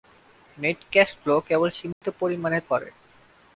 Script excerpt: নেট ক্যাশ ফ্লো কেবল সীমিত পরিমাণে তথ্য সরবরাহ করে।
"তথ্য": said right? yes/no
no